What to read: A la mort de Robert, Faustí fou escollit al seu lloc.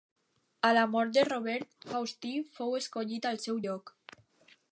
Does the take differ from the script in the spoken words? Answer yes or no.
no